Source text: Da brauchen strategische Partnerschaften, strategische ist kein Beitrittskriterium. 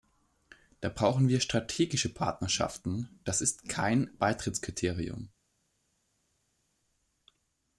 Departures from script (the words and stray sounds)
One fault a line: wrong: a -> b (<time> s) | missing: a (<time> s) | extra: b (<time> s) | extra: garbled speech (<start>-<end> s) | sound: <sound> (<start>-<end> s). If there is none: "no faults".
extra: wir (1.3 s)
wrong: strategische -> das (3.2 s)